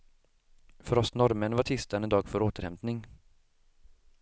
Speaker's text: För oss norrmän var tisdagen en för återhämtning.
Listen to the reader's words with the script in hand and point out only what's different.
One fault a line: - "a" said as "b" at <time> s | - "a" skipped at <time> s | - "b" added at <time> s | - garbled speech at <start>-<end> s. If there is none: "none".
- "dag" added at 2.1 s